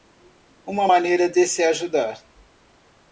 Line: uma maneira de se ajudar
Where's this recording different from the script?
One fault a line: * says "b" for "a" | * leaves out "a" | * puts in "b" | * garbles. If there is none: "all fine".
all fine